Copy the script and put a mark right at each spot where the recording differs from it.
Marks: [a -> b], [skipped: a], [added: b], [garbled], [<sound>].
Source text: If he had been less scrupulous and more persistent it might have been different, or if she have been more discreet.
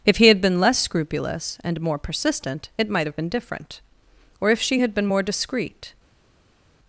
If he had been less scrupulous and more persistent it might have been different, or if she [have -> had] been more discreet.